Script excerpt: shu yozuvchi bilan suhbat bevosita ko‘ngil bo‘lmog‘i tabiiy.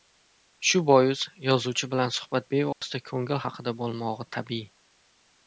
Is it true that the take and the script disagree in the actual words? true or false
true